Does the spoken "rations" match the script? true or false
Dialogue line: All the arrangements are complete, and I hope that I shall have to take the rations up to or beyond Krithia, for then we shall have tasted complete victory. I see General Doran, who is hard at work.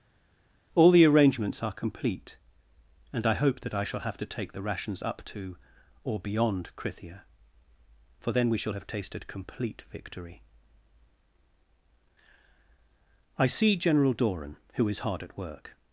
true